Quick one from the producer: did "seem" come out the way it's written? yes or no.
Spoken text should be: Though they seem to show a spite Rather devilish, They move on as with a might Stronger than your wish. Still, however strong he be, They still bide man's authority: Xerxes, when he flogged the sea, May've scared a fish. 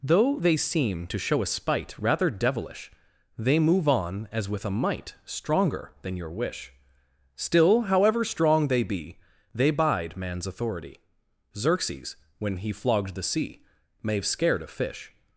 yes